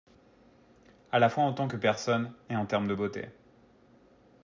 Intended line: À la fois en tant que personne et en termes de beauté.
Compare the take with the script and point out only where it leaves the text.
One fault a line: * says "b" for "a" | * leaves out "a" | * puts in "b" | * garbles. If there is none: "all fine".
all fine